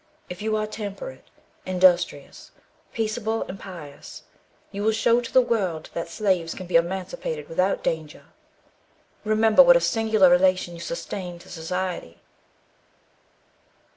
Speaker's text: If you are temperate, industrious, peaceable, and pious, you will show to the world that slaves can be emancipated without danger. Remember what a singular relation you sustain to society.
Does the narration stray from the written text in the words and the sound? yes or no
no